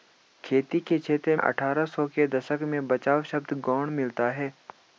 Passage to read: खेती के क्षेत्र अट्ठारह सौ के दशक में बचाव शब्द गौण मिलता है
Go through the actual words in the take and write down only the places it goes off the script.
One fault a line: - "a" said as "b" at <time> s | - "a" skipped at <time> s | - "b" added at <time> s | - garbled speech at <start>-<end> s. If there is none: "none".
none